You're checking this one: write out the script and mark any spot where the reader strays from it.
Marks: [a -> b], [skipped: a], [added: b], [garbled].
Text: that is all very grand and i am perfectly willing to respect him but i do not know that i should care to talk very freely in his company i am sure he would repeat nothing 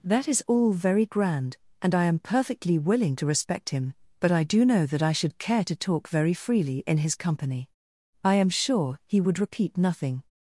that is all very grand and i am perfectly willing to respect him but i do [skipped: not] know that i should care to talk very freely in his company i am sure he would repeat nothing